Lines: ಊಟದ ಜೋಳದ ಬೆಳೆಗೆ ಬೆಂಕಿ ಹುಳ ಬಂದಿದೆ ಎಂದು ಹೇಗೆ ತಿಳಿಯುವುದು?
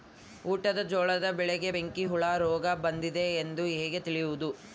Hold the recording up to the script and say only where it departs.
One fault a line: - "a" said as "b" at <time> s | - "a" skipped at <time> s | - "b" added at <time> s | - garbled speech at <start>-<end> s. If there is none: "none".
- "ರೋಗ" added at 2.4 s